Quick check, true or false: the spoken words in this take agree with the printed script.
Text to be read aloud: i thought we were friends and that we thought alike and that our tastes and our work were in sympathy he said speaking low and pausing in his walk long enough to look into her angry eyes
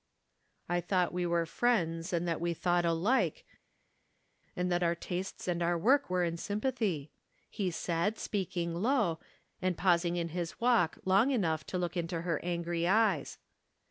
true